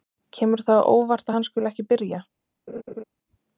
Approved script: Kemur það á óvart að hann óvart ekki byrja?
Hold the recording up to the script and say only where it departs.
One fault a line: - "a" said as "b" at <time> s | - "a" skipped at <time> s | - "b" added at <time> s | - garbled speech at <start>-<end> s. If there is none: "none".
- "óvart" said as "skuli" at 1.5 s